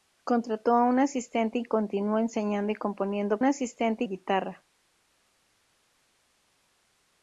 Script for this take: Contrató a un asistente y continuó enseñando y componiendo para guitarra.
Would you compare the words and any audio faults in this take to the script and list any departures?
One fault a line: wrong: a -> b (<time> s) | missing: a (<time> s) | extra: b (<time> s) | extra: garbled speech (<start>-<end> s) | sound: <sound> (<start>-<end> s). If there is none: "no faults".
wrong: para -> asistente (3.4 s)